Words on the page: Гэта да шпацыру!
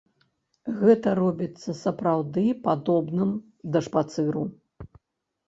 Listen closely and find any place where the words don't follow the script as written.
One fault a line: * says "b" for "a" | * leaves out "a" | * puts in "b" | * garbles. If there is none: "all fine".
* puts in "робіцца сапраўды падобным"